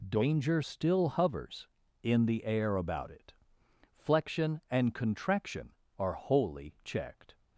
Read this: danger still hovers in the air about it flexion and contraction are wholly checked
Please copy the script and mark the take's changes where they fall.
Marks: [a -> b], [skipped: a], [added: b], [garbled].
danger still hovers in the air about it flexion and contraction are wholly checked